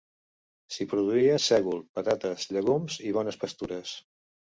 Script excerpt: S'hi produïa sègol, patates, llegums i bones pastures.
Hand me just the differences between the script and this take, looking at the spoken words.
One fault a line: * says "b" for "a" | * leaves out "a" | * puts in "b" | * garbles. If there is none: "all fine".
all fine